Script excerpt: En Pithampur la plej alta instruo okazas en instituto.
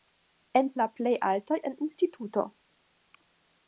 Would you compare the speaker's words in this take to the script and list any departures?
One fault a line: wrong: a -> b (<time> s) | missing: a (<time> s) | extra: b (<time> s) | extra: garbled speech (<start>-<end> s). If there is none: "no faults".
missing: Pithampur (0.7 s)
missing: instruo okazas (1.6 s)